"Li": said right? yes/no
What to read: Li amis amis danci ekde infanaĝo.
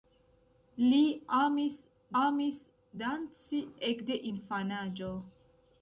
yes